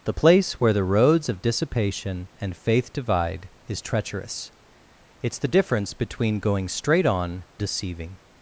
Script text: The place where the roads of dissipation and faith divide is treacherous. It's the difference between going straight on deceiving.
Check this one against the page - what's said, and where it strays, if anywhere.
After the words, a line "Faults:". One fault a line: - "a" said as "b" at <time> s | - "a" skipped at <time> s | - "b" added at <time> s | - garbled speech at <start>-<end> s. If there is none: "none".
The place where the roads of dissipation and faith divide is treacherous. It's the difference between going straight on deceiving.
Faults:
none